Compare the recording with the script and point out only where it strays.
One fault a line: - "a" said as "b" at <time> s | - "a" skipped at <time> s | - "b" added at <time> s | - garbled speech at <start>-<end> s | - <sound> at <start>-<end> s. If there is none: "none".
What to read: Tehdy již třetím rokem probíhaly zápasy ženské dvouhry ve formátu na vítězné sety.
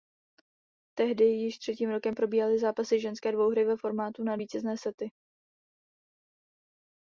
none